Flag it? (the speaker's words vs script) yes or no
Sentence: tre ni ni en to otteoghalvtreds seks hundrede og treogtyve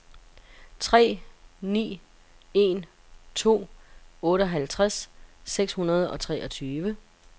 yes